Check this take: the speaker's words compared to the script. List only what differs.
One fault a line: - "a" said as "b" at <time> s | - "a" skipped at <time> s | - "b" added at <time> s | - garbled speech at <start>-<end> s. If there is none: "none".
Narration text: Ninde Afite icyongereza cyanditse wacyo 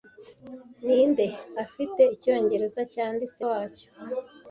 none